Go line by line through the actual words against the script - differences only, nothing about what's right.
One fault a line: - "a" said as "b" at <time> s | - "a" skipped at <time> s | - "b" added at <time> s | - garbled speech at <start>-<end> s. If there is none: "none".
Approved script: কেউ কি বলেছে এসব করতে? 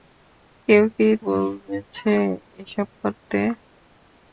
none